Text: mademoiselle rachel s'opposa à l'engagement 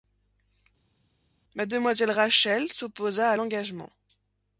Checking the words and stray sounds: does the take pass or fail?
pass